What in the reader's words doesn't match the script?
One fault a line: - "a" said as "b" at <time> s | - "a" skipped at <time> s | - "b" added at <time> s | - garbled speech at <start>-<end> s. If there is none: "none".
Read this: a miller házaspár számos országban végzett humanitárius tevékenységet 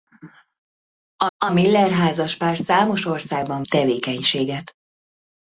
- "a" added at 1.4 s
- "végzett humanitárius" skipped at 3.6 s